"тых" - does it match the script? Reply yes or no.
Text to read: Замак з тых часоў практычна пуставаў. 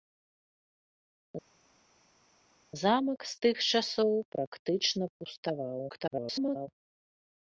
yes